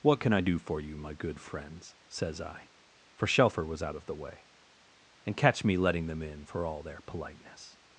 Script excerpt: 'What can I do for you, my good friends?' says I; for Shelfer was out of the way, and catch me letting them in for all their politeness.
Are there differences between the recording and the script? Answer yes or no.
no